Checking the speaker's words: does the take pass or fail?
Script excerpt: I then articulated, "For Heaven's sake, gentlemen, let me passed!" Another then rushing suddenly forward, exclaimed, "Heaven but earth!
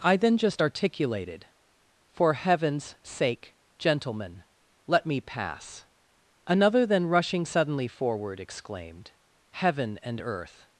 fail